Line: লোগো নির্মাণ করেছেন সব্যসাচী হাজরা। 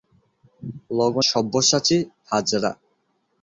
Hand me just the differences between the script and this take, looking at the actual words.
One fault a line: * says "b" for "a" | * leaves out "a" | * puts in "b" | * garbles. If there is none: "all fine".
* leaves out "নির্মাণ করেছেন"